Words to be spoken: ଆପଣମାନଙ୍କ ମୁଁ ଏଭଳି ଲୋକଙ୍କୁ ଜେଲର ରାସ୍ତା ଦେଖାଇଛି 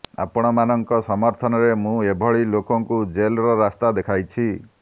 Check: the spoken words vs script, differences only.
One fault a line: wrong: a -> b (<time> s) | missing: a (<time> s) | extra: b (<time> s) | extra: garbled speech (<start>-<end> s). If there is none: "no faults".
extra: ସମର୍ଥନରେ (1.1 s)